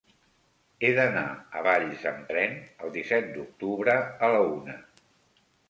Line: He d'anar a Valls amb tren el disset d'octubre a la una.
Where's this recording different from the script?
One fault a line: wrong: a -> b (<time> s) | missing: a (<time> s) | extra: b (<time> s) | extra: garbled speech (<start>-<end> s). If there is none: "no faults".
no faults